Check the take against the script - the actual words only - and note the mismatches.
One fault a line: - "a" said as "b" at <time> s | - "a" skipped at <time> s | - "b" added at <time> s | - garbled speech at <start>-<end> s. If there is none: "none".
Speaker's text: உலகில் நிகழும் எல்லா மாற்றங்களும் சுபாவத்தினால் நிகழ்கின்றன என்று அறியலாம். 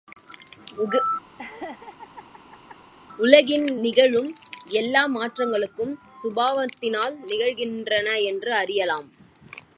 none